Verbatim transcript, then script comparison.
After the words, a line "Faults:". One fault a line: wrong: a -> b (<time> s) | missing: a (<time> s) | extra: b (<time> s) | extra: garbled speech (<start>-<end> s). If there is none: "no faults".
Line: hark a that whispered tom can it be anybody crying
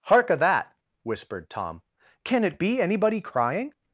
hark a that whispered tom can it be anybody crying
Faults:
no faults